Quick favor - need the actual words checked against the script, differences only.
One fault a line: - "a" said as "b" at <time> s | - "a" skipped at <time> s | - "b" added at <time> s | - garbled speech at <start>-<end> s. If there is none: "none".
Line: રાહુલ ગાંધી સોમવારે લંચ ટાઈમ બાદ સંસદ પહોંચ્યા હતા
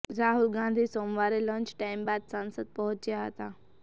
none